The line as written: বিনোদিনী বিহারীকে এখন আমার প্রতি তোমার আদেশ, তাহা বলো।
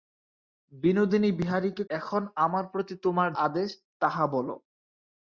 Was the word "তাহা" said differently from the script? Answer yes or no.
no